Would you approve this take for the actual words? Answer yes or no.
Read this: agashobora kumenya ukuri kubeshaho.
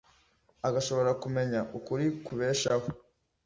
yes